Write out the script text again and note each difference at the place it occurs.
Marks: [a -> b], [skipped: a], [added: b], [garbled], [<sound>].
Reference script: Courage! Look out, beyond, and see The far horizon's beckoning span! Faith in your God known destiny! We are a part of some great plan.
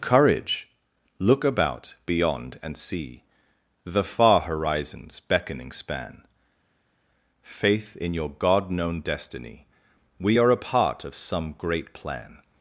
Courage! Look [out, -> about] beyond, and see The far horizon's beckoning span! Faith in your God known destiny! We are a part of some great plan.